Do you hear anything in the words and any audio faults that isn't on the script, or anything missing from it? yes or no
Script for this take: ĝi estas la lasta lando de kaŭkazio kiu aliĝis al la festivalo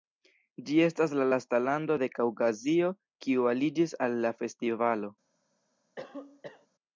yes